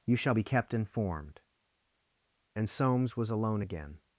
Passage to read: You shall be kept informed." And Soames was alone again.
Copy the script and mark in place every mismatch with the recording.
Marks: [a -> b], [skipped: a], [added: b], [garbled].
You shall be kept informed." And Soames was alone again.